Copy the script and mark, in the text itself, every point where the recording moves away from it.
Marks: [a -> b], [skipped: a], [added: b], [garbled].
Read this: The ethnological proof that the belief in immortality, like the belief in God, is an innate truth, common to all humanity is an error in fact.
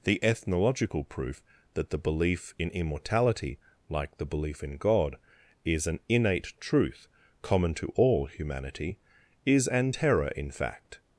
The ethnological proof that the belief in immortality, like the belief in God, is an innate truth, common to all humanity is an [error -> terror] in fact.